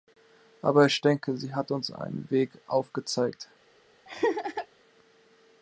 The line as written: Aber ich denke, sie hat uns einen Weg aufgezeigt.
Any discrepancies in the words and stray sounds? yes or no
yes